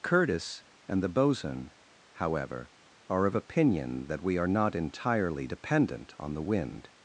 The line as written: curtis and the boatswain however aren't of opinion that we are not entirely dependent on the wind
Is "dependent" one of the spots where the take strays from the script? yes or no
no